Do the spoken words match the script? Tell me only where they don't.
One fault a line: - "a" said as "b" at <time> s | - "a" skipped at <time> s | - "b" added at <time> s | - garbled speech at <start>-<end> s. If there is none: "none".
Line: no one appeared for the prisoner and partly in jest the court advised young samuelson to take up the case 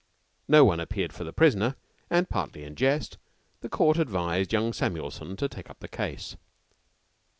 none